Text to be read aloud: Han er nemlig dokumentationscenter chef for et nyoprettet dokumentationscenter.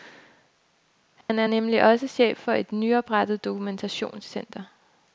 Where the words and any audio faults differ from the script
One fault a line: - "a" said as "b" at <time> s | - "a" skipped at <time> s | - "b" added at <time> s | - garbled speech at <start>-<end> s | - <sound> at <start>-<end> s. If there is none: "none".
- dropout at 1.2-1.3 s
- "dokumentationscenter" said as "også" at 1.8 s